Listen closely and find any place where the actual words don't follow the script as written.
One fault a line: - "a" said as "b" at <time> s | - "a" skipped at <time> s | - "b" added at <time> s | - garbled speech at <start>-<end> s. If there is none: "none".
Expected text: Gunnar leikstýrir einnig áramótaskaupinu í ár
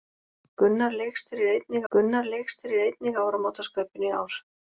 - "gunnar leikstýrir einnig" added at 1.9 s